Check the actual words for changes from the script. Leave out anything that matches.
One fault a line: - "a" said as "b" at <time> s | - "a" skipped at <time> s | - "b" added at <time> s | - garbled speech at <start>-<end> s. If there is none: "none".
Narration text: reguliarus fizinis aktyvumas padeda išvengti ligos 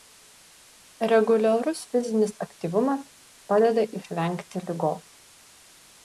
none